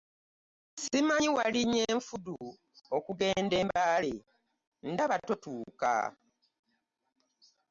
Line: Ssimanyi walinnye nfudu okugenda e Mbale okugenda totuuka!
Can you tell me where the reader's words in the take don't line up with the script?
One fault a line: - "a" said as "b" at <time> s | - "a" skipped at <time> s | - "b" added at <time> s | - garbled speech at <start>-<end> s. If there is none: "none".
- "okugenda" said as "ndaba" at 4.9 s